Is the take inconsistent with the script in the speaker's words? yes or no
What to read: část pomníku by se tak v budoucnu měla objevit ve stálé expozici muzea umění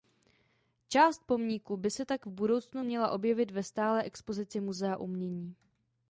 no